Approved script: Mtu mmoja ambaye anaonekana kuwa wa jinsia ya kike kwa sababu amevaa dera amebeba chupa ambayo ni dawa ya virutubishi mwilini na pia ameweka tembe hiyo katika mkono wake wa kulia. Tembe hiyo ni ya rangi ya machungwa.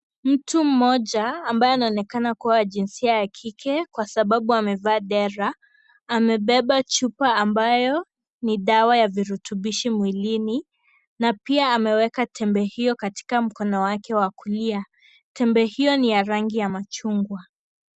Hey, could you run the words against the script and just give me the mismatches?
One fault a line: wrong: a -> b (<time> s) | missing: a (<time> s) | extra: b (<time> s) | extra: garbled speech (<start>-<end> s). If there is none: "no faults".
no faults